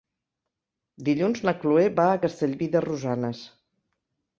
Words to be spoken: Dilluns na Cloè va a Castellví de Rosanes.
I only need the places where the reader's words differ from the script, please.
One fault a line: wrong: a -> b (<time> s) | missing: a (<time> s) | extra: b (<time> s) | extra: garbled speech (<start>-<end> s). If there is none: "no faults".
no faults